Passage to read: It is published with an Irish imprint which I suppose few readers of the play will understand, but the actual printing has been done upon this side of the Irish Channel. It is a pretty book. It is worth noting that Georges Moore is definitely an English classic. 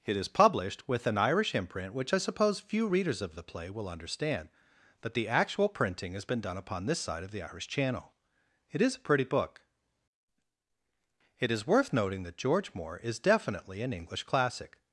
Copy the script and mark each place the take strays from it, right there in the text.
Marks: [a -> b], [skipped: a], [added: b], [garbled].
It is published with an Irish imprint which I suppose few readers of the play will understand, but the actual printing has been done upon this side of the Irish Channel. It is a pretty book. It is worth noting that [Georges -> George] Moore is definitely an English classic.